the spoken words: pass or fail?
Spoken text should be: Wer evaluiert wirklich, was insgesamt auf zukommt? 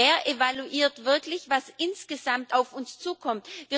fail